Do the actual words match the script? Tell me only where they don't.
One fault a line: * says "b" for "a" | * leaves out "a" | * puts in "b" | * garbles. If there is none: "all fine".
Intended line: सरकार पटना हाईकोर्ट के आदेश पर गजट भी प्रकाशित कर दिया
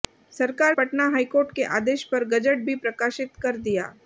all fine